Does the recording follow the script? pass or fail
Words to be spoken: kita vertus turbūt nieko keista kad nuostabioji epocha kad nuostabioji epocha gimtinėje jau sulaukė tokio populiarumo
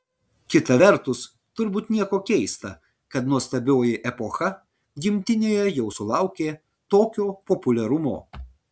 fail